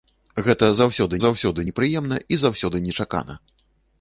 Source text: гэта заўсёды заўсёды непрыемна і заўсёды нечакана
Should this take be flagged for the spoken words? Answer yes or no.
no